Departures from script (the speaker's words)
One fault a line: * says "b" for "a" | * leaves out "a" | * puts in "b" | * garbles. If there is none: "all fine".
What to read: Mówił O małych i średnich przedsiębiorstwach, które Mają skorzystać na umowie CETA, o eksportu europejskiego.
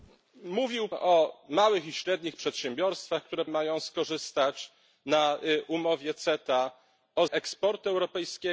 all fine